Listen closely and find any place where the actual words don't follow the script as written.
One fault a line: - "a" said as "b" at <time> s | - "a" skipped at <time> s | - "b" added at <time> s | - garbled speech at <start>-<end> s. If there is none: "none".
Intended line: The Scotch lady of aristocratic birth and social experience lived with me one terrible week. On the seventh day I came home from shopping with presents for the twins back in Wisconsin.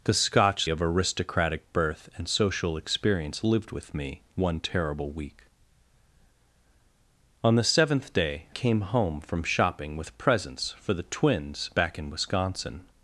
- "lady" skipped at 0.7 s
- "I" skipped at 8.5 s